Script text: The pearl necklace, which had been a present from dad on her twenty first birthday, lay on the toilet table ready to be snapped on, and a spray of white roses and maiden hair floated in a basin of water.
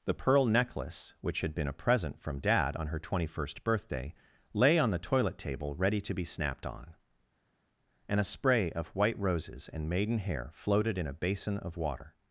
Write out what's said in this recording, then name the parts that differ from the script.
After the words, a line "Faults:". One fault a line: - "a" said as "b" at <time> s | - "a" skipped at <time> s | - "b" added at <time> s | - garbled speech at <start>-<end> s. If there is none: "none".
The pearl necklace, which had been a present from dad on her twenty first birthday, lay on the toilet table ready to be snapped on, and a spray of white roses and maiden hair floated in a basin of water.
Faults:
none